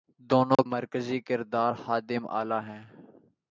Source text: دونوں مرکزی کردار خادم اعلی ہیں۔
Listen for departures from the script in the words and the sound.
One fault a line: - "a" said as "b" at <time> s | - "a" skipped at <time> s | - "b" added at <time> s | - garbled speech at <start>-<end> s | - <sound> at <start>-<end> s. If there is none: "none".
- dropout at 0.5-0.6 s